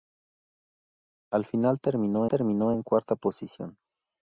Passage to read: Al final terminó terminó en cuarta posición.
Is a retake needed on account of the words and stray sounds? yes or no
no